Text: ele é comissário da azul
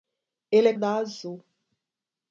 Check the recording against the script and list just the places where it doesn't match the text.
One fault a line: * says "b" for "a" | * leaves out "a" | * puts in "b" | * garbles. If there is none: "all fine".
* leaves out "comissário"